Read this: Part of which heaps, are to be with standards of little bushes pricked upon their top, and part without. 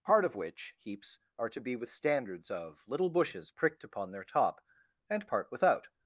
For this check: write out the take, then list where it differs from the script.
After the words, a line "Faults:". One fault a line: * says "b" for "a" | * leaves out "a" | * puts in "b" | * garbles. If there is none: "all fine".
Part of which heaps, are to be with standards of little bushes pricked upon their top, and part without.
Faults:
all fine